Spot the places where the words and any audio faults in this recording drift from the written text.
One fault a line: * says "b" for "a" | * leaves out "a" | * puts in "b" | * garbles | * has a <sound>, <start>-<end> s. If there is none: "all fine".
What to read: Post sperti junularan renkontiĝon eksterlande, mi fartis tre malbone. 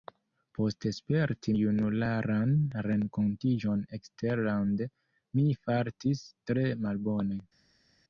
all fine